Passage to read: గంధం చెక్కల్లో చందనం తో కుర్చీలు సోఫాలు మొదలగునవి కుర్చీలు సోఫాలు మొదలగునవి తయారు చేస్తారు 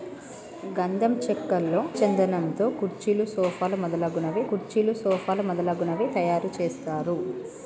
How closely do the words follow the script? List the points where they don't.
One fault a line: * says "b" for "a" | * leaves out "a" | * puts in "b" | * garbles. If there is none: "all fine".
all fine